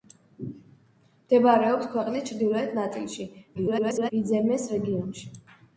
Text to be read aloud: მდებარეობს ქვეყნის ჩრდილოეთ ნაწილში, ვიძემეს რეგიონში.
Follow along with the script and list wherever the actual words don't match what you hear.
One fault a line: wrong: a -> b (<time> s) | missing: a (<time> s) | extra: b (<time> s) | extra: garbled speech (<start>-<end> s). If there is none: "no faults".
extra: garbled speech (3.5-4.1 s)